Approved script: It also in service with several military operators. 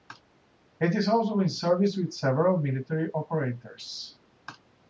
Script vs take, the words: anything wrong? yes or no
yes